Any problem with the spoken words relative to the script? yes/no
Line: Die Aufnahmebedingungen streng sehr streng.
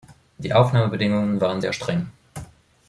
yes